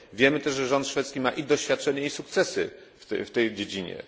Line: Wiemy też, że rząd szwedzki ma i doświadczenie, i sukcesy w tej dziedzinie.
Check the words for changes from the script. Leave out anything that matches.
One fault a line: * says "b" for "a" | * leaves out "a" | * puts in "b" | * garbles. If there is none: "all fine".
all fine